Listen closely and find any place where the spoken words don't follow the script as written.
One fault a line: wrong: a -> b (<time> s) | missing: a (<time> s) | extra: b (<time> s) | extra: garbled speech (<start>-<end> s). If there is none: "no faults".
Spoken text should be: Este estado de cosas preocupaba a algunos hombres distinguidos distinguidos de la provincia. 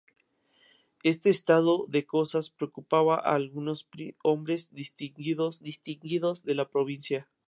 no faults